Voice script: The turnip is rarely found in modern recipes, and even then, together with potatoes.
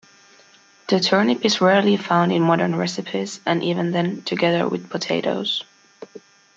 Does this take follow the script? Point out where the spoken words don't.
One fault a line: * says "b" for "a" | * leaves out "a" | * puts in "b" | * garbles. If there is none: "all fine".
all fine